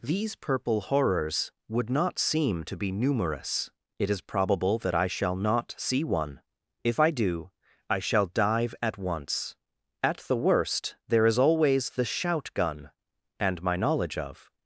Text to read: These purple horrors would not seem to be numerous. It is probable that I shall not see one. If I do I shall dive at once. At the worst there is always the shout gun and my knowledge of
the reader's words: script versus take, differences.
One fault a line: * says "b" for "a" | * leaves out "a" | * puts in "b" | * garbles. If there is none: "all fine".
all fine